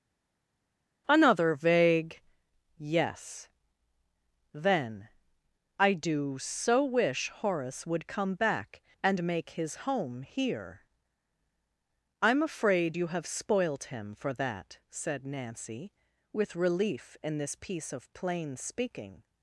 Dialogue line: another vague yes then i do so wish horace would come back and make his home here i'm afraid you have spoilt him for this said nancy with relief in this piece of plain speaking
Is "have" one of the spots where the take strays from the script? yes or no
no